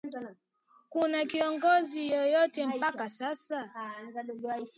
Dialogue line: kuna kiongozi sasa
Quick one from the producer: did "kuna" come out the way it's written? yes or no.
yes